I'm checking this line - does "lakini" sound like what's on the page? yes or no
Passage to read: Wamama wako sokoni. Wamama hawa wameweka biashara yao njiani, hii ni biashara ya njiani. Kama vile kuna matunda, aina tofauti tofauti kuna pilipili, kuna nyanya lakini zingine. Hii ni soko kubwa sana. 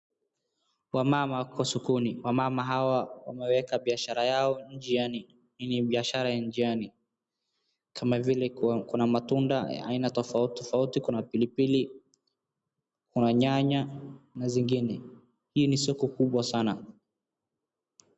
no